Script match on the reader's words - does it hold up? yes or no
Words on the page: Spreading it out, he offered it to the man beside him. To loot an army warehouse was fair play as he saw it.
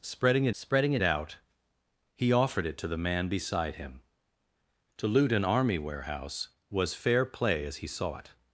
no